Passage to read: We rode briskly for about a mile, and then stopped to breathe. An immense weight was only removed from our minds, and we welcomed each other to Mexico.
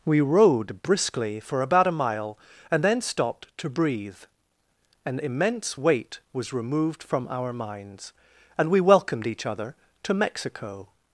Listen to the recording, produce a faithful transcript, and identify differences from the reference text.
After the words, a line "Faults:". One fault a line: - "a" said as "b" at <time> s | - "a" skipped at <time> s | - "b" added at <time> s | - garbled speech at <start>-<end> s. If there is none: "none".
We rode briskly for about a mile, and then stopped to breathe. An immense weight was removed from our minds, and we welcomed each other to Mexico.
Faults:
- "only" skipped at 6.5 s